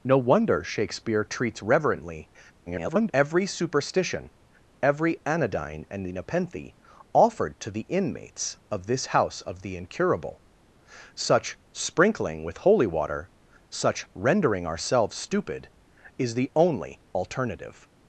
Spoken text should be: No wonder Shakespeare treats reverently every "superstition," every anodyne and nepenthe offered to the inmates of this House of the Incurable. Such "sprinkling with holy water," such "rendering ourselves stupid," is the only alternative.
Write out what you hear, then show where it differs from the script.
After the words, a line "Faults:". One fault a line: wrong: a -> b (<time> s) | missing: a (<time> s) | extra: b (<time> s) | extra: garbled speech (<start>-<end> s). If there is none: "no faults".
No wonder Shakespeare treats reverently [garbled] every "superstition," every anodyne and nepenthe offered to the inmates of this House of the Incurable. Such "sprinkling with holy water," such "rendering ourselves stupid," is the only alternative.
Faults:
extra: garbled speech (2.7-3.1 s)